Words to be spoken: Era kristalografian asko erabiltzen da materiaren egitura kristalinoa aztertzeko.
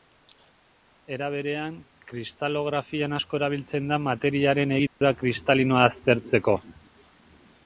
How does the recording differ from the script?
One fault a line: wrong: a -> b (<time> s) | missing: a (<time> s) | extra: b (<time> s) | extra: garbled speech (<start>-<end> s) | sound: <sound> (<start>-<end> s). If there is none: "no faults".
extra: berean (1.4 s)
sound: dropout (4.9-5.0 s)